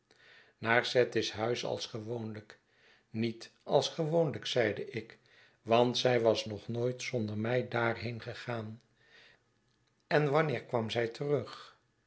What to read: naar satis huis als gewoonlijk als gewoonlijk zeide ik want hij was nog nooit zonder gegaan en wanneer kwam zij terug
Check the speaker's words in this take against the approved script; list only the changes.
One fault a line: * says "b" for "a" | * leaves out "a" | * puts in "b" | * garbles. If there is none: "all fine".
* puts in "niet"
* says "zij" for "hij"
* puts in "mij daarheen"